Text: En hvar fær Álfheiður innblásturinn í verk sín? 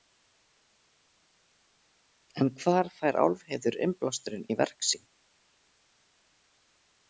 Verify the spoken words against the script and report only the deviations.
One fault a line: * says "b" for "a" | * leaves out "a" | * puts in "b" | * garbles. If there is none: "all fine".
all fine